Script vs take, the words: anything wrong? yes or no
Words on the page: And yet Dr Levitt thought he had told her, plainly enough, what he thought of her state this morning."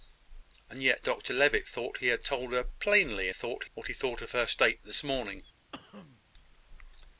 yes